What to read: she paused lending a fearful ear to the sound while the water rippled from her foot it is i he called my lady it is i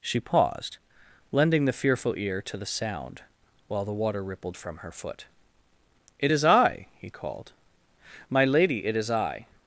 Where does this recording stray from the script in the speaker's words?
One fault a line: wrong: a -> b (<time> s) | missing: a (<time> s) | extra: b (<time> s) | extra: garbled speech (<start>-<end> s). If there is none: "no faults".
wrong: a -> the (1.6 s)